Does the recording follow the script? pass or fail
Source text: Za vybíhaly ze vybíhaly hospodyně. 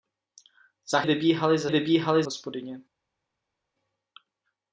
pass